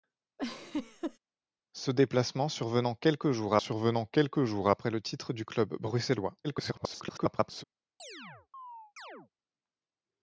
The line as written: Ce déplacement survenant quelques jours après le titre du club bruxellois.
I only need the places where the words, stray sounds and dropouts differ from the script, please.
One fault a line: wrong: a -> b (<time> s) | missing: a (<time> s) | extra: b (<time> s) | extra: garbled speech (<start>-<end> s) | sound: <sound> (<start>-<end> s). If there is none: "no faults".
sound: laugh (0.4-1.2 s)
extra: survenant quelques jours (3.6 s)
extra: garbled speech (6.4-7.6 s)
sound: chirp (8.0-9.3 s)